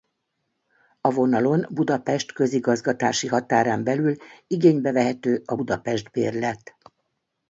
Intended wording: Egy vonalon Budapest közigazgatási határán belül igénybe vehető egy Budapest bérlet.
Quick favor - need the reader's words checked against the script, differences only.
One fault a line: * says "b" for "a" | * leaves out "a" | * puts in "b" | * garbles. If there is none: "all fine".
* says "A" for "Egy"
* says "a" for "egy"